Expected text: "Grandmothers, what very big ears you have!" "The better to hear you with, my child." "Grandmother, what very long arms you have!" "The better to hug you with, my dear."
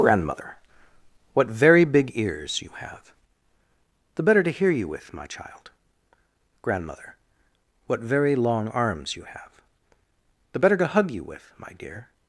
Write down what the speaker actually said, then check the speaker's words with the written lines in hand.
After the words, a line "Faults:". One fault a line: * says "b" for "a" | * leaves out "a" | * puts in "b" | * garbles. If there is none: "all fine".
"Grandmother, what very big ears you have!" "The better to hear you with, my child." "Grandmother, what very long arms you have!" "The better to hug you with, my dear."
Faults:
* says "Grandmother" for "Grandmothers"